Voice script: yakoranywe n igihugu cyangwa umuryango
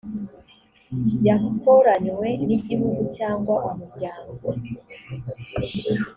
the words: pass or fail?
pass